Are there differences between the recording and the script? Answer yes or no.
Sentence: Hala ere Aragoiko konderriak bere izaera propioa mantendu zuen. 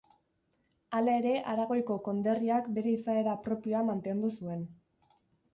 no